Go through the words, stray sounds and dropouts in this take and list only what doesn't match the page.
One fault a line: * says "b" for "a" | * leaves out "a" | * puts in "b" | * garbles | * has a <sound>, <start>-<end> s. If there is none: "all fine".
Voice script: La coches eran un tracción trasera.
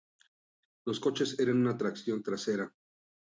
* says "Los" for "La"
* says "una" for "un"